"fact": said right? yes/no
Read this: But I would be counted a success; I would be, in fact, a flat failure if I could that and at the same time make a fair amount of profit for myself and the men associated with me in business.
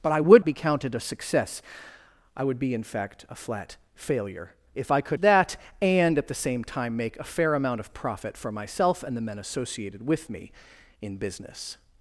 yes